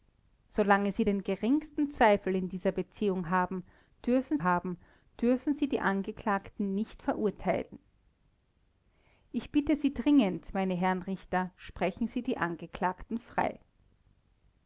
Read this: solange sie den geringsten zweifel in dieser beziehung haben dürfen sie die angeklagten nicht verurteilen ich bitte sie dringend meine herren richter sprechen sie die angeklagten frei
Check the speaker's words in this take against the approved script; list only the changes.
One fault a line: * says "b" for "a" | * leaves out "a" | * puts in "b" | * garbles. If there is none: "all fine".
* puts in "haben dürfen"